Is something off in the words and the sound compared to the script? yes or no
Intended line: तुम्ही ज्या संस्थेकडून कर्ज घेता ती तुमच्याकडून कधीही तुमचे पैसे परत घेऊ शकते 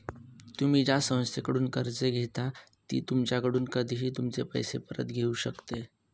no